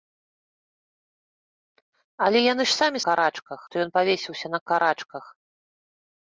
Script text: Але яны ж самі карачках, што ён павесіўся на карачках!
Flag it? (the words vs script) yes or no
no